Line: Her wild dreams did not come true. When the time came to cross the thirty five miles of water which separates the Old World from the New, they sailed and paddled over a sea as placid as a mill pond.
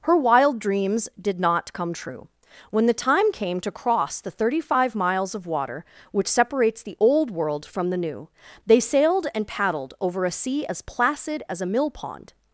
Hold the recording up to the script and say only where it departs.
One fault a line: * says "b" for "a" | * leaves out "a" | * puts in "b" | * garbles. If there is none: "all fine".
all fine